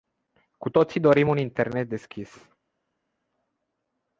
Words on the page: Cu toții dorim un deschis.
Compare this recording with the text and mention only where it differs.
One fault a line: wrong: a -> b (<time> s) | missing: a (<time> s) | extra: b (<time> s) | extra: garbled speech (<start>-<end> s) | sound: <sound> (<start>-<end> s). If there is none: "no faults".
extra: internet (1.4 s)